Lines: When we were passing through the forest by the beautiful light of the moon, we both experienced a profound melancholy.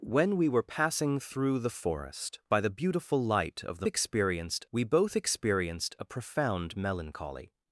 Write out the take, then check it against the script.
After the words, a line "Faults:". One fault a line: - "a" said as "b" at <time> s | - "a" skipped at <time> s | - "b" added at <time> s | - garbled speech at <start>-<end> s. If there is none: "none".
When we were passing through the forest by the beautiful light of the experienced, we both experienced a profound melancholy.
Faults:
- "moon" said as "experienced" at 3.9 s